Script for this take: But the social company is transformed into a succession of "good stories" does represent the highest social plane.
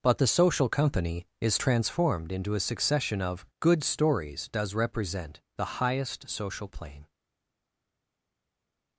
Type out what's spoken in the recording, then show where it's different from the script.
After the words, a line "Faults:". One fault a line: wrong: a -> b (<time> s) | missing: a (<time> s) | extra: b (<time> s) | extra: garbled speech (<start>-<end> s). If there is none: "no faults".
But the social company is transformed into a succession of "good stories" does represent the highest social plane.
Faults:
no faults